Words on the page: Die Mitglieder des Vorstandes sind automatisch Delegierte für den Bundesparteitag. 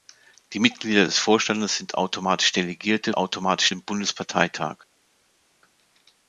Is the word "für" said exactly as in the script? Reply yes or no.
no